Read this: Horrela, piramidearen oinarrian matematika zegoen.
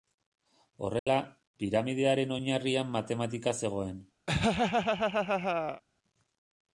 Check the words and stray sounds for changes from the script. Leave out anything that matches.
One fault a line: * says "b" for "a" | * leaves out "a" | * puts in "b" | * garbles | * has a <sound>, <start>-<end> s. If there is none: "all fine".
* has a dropout, 1.0-1.1 s
* has a laugh, 4.3-5.8 s